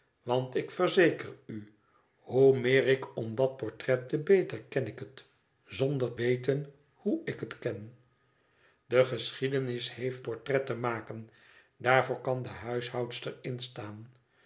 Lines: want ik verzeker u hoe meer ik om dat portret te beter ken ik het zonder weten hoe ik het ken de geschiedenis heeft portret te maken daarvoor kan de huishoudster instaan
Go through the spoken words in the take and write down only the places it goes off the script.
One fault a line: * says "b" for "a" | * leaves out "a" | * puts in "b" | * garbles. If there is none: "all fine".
all fine